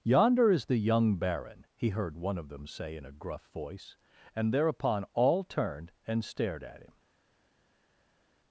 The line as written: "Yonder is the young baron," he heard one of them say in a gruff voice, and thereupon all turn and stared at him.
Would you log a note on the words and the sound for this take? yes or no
yes